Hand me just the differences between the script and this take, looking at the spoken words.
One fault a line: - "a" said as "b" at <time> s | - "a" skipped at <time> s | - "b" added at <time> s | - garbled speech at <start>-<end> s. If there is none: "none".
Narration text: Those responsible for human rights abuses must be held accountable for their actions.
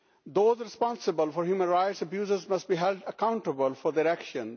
none